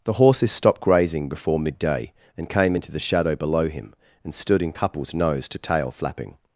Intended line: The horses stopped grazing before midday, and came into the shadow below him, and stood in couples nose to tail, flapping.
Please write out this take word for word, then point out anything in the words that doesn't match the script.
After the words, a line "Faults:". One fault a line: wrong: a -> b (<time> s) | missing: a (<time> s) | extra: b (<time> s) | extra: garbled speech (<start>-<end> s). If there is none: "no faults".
The horses stopped grazing before midday, and came into the shadow below him, and stood in couples nose to tail, flapping.
Faults:
no faults